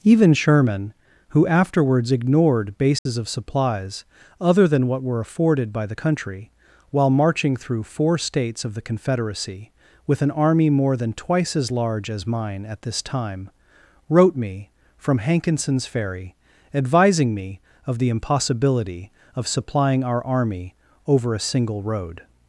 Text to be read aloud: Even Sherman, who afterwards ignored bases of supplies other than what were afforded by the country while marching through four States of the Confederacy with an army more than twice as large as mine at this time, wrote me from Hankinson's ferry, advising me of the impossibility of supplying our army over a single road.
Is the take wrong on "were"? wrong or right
right